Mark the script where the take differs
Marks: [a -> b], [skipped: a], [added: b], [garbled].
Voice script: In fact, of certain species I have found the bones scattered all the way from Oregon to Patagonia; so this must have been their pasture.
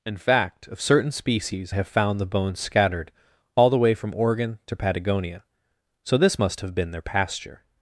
In fact, of certain species [skipped: I] have found the bones scattered all the way from Oregon to Patagonia; so this must have been their pasture.